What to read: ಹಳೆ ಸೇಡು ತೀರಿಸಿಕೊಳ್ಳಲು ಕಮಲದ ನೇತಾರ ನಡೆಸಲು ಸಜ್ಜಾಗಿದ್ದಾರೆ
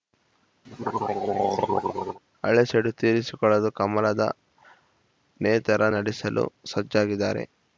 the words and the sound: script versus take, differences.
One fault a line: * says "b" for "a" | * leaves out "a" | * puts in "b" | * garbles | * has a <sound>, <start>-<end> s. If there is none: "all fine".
* has a throat clearing, 0.6-2.2 s